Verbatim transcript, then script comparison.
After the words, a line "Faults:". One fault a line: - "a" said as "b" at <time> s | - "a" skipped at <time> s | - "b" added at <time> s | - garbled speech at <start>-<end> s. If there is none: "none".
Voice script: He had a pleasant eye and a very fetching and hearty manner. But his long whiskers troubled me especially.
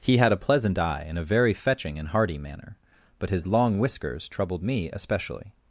He had a pleasant eye and a very fetching and hearty manner. But his long whiskers troubled me especially.
Faults:
none